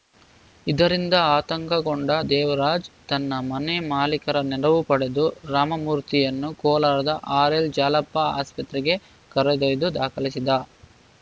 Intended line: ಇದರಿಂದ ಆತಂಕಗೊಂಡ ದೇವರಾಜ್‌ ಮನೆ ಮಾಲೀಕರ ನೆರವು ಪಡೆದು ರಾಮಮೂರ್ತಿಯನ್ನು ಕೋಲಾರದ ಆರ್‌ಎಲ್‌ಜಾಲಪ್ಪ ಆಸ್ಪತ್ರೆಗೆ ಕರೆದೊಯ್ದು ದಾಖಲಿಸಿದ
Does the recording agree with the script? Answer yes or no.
no